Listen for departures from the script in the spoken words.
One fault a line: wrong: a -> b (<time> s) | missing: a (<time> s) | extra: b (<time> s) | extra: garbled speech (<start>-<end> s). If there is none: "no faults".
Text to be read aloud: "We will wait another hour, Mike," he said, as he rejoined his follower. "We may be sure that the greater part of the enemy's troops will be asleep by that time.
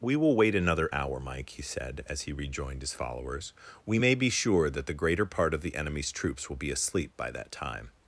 wrong: follower -> followers (2.9 s)